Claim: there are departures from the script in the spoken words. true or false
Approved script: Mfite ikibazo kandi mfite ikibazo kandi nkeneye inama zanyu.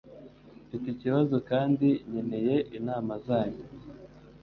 true